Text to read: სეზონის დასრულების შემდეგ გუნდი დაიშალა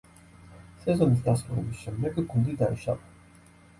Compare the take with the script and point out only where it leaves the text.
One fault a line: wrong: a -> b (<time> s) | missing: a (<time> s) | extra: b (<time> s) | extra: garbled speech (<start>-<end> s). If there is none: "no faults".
no faults